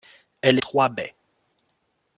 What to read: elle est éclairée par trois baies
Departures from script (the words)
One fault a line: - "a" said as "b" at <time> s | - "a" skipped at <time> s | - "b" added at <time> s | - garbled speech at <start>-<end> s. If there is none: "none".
- "est éclairée par" skipped at 0.6 s